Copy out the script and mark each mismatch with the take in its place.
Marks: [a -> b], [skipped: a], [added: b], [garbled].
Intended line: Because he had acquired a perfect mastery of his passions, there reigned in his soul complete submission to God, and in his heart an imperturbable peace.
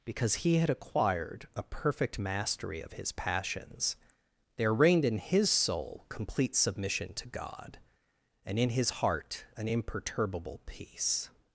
Because he had acquired a perfect mastery of his passions, there reigned in his soul complete submission to God, and in his heart an imperturbable peace.